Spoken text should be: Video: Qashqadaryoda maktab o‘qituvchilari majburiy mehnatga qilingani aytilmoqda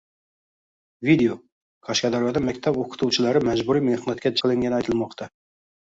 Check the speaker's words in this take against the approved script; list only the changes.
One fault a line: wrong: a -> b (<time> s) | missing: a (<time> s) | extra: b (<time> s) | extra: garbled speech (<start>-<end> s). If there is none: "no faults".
no faults